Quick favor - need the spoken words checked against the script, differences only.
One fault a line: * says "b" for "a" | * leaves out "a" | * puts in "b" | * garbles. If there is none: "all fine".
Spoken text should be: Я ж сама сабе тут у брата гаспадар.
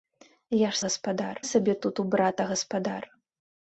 * says "гаспадар" for "сама"